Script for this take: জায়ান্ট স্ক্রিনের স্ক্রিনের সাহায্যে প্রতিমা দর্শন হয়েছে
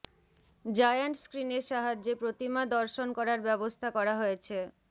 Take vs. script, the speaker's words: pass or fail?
fail